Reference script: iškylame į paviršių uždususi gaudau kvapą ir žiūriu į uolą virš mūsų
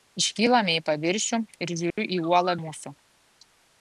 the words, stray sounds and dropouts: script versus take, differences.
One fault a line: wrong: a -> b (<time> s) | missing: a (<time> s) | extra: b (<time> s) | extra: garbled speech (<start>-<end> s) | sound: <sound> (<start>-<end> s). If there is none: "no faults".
missing: uždususi gaudau kvapą (1.4 s)
sound: dropout (1.9-2.0 s)
missing: virš (2.6 s)